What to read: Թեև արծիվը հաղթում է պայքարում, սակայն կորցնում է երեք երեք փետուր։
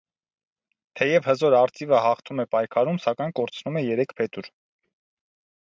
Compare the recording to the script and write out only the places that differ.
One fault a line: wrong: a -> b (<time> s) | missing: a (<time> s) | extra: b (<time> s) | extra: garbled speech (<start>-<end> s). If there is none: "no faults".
extra: հզոր (1.3 s)
missing: երեք (4.2 s)